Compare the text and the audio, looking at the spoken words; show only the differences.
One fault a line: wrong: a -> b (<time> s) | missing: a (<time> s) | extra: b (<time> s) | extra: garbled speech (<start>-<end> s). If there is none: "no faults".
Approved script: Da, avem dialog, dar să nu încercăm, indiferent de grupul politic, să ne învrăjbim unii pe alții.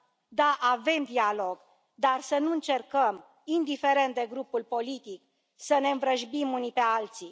no faults